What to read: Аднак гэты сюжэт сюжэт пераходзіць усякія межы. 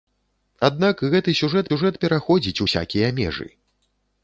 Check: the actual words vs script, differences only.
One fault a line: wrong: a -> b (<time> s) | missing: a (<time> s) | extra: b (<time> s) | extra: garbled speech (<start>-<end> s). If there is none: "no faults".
no faults